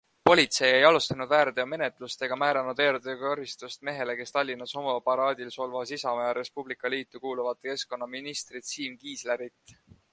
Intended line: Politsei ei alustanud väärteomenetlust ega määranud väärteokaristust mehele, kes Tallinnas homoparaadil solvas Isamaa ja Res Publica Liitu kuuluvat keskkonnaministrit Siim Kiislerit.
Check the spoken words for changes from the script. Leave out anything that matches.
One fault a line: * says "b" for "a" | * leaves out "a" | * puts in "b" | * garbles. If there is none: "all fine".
all fine